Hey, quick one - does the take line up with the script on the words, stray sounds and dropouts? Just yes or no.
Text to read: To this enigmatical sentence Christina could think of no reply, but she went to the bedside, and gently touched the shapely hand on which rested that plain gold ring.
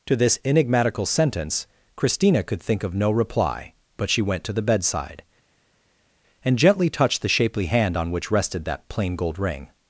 yes